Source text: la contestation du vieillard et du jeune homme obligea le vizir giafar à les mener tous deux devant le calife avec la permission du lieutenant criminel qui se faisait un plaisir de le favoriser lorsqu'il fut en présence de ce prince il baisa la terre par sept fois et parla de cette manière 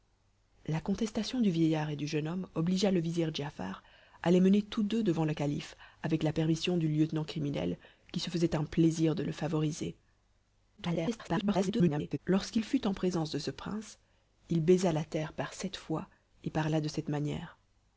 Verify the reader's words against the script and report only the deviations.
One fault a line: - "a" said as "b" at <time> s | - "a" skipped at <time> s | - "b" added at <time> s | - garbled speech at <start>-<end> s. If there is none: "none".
- garbled speech at 10.8-12.2 s